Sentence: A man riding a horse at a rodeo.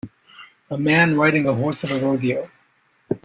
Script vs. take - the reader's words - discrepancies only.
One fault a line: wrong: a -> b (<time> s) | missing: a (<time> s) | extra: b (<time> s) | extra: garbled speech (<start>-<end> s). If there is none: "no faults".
no faults